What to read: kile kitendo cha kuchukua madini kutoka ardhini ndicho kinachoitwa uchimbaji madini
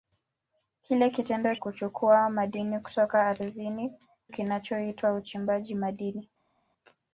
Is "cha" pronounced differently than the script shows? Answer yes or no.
yes